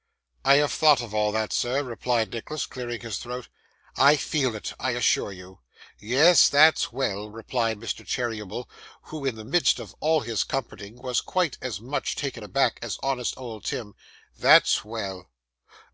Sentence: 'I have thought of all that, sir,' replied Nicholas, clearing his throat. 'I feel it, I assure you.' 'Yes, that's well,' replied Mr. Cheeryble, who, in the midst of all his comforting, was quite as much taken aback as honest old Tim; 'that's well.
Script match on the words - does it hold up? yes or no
yes